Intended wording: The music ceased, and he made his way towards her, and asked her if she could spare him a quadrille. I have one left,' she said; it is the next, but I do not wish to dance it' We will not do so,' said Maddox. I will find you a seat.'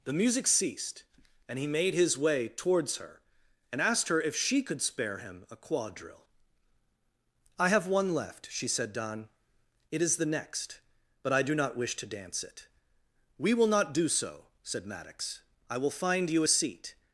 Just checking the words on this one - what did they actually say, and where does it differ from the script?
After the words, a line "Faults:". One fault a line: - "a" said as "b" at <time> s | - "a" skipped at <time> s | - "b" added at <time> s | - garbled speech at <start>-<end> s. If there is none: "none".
The music ceased, and he made his way towards her, and asked her if she could spare him a quadrille. I have one left,' she said; don it is the next, but I do not wish to dance it' We will not do so,' said Maddox. I will find you a seat.'
Faults:
- "don" added at 8.9 s